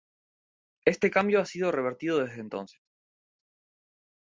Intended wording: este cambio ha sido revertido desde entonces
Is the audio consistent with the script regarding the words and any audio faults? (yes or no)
yes